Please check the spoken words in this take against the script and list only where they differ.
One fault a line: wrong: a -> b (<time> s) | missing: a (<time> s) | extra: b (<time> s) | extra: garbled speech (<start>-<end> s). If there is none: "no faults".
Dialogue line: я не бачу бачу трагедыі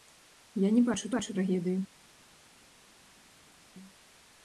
no faults